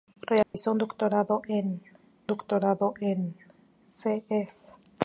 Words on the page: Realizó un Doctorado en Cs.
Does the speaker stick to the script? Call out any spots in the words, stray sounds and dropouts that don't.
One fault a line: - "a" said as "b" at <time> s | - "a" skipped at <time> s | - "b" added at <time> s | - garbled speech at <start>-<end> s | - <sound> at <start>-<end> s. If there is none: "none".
- dropout at 0.4-0.5 s
- "Doctorado en" added at 2.3 s